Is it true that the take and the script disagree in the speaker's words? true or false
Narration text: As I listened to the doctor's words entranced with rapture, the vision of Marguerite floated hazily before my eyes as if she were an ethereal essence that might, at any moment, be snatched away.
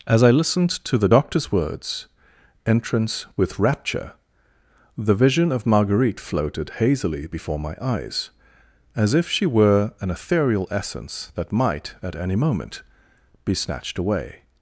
true